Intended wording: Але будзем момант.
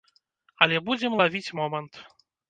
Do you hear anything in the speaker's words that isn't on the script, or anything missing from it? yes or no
yes